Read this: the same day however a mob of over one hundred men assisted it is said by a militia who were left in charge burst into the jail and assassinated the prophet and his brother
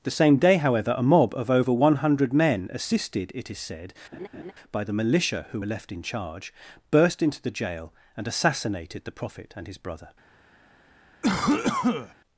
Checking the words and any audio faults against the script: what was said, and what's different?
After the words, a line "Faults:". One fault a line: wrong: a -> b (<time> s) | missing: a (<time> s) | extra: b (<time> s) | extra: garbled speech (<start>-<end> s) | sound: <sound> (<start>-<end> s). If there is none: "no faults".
the same day however a mob of over one hundred men assisted it is said by the militia who were left in charge burst into the jail and assassinated the prophet and his brother
Faults:
sound: laugh (4.1-4.5 s)
wrong: a -> the (4.8 s)
sound: cough (11.2-12.1 s)